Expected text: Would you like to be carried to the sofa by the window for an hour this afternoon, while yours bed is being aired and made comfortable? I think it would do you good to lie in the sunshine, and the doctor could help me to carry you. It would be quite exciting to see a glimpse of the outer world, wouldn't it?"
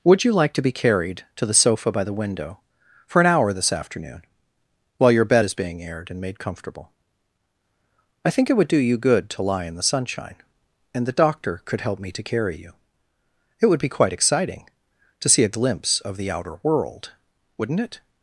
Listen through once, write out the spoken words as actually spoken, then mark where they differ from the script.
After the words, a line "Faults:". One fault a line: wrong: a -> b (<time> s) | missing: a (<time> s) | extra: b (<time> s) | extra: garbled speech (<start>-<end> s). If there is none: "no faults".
Would you like to be carried to the sofa by the window for an hour this afternoon, while your bed is being aired and made comfortable? I think it would do you good to lie in the sunshine, and the doctor could help me to carry you. It would be quite exciting to see a glimpse of the outer world, wouldn't it?"
Faults:
wrong: yours -> your (5.1 s)